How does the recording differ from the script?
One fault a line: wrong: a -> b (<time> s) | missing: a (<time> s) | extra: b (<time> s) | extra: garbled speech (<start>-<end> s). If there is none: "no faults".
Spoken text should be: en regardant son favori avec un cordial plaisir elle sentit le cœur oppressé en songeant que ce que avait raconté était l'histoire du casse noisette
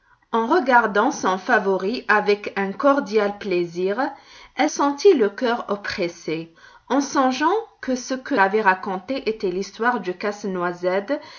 no faults